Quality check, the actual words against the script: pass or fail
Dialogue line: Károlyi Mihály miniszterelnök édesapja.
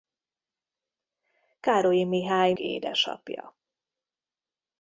fail